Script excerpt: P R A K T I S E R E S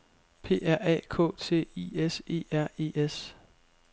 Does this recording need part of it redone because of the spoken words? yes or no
no